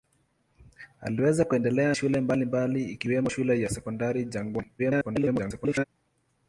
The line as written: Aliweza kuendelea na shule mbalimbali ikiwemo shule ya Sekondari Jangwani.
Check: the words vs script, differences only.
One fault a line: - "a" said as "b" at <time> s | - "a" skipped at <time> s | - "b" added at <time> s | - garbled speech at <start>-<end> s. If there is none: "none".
- "na" skipped at 1.9 s
- garbled speech at 4.8-5.8 s